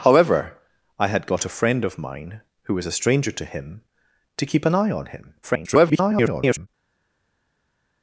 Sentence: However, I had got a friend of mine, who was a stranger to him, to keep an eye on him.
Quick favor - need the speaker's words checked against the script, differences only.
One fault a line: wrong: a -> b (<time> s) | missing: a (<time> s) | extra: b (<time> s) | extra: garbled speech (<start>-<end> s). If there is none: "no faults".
extra: garbled speech (5.4-6.7 s)